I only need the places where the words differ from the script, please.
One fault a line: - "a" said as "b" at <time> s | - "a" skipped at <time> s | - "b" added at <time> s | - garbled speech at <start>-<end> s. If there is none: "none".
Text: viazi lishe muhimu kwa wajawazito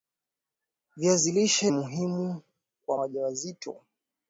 none